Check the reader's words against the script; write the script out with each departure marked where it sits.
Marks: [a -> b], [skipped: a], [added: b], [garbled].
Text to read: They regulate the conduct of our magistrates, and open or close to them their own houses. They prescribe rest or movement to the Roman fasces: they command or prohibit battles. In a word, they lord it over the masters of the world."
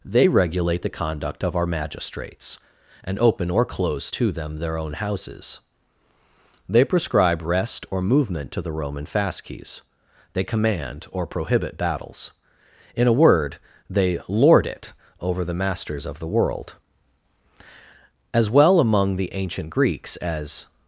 They regulate the conduct of our magistrates, and open or close to them their own houses. They prescribe rest or movement to the Roman fasces: they command or prohibit battles. In a word, they lord it over the masters of the world." [added: As well among the ancient Greeks as]